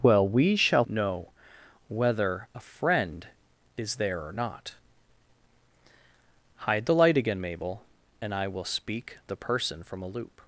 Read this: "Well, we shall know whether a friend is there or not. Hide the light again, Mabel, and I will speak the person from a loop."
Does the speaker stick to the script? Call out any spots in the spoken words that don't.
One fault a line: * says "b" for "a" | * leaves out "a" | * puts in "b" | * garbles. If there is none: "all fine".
all fine